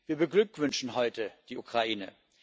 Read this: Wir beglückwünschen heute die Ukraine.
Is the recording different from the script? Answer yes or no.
no